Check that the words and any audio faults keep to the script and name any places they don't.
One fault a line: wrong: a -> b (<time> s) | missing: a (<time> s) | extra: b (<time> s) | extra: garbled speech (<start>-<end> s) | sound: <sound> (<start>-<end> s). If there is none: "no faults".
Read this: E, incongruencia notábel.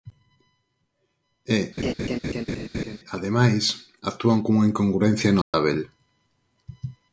sound: laugh (1.8-3.0 s)
extra: ademais actúan cunha (3.1 s)
sound: dropout (5.4-5.5 s)